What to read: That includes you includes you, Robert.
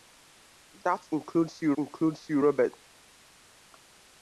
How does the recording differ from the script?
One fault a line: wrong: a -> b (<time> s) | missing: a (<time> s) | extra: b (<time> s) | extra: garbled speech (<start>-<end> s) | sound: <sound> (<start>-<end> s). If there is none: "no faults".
no faults